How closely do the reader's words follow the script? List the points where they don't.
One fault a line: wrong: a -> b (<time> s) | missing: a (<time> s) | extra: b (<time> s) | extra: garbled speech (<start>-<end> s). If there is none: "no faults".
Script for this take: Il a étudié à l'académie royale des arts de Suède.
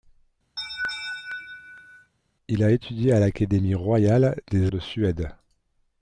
missing: arts (4.7 s)